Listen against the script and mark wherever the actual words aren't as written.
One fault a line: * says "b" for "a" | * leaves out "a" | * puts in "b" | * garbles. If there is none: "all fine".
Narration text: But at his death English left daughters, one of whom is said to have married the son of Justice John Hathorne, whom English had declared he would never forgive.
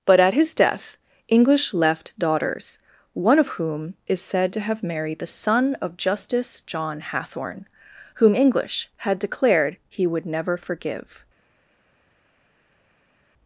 all fine